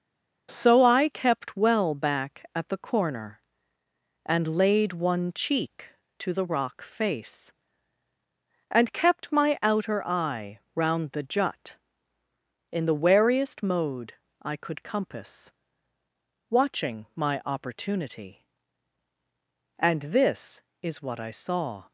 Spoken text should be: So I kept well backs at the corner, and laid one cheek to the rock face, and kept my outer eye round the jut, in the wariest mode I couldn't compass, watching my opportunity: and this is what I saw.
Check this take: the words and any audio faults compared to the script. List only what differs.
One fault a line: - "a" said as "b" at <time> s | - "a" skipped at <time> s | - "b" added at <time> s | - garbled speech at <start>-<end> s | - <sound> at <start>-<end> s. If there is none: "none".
- "backs" said as "back" at 1.9 s
- "couldn't" said as "could" at 14.6 s